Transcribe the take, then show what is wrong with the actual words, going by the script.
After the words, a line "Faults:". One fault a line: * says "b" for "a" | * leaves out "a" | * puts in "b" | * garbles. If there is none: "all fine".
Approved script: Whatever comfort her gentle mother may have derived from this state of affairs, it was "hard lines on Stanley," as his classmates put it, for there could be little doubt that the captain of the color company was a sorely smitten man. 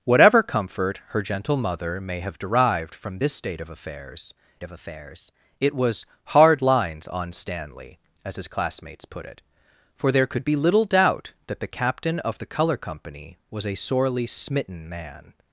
Whatever comfort her gentle mother may have derived from this state of affairs of affairs, it was "hard lines on Stanley," as his classmates put it, for there could be little doubt that the captain of the color company was a sorely smitten man.
Faults:
* puts in "of affairs"